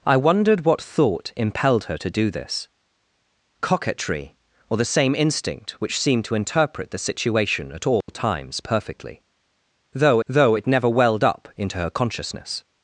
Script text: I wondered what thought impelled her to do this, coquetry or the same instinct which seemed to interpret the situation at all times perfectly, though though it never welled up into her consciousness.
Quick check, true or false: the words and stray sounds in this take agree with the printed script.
false